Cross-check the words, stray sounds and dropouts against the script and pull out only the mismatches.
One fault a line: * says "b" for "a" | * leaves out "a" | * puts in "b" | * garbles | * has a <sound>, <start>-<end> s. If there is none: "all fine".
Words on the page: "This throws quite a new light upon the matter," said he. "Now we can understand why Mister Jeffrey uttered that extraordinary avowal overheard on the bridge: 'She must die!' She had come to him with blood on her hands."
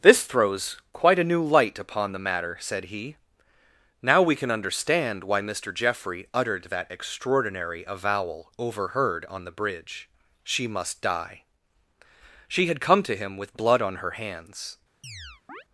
* has a chirp, 15.0-15.6 s